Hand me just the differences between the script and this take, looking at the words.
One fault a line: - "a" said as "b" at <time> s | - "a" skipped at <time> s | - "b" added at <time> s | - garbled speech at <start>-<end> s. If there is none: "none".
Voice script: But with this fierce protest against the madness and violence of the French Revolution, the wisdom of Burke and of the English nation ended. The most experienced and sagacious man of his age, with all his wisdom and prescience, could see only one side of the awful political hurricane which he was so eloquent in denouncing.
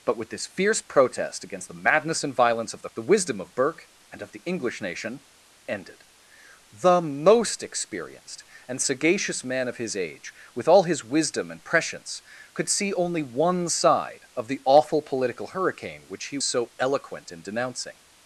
- "French Revolution" skipped at 2.9 s
- "was" skipped at 16.4 s